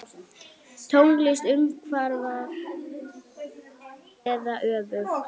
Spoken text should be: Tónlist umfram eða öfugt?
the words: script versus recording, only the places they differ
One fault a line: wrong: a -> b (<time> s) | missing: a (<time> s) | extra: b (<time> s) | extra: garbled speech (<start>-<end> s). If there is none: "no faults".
no faults